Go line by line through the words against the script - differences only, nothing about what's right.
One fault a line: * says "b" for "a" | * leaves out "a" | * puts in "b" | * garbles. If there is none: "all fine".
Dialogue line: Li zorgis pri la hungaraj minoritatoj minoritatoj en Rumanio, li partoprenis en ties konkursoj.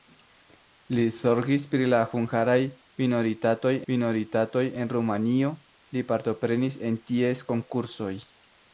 all fine